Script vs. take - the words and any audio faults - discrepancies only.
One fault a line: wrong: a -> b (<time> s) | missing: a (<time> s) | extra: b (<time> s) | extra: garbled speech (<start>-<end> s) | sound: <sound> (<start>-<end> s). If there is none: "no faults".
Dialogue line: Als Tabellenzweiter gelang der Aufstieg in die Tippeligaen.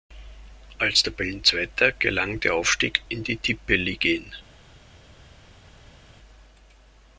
no faults